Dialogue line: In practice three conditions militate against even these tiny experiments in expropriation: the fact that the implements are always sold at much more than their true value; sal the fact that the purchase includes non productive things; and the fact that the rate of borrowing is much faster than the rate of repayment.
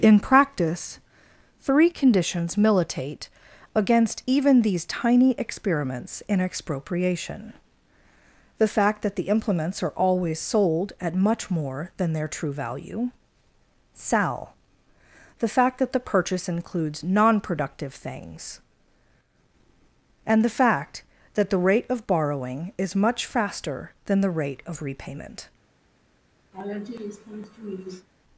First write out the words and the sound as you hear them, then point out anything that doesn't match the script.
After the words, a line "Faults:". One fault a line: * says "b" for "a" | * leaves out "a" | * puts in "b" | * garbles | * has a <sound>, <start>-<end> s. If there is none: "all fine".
In practice three conditions militate against even these tiny experiments in expropriation: the fact that the implements are always sold at much more than their true value; sal the fact that the purchase includes non productive things; and the fact that the rate of borrowing is much faster than the rate of repayment.
Faults:
* has a laugh, 26.5-28.1 s